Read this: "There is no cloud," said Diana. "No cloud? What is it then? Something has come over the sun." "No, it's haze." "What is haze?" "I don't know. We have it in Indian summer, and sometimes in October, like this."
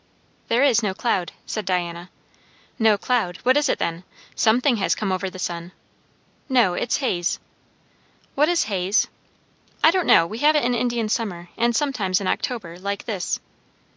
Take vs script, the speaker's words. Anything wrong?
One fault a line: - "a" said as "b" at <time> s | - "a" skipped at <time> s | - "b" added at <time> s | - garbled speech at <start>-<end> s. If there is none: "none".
none